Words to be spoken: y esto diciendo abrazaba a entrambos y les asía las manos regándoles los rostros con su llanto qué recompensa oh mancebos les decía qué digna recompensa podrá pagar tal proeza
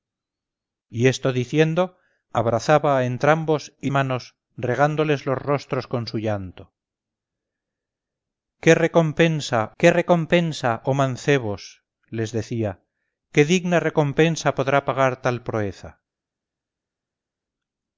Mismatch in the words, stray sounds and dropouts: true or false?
true